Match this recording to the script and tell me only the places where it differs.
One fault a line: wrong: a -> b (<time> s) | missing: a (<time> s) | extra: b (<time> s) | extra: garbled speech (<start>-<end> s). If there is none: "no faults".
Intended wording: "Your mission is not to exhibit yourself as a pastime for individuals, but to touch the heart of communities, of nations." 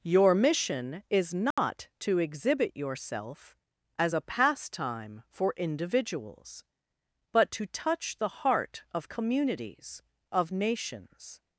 no faults